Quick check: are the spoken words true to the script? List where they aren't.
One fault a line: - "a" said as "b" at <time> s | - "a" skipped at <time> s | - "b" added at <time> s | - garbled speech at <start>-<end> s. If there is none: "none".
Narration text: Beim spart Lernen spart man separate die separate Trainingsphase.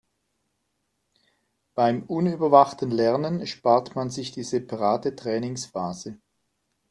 - "spart" said as "unüberwachten" at 2.1 s
- "separate" said as "sich" at 4.1 s